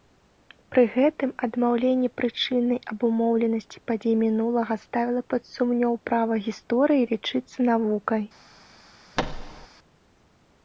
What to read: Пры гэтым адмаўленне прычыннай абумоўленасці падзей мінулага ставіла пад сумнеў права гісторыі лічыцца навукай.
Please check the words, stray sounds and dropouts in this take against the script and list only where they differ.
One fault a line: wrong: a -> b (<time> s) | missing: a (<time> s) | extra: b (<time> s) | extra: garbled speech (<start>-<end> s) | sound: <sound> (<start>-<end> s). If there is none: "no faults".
sound: thud (9.2-9.7 s)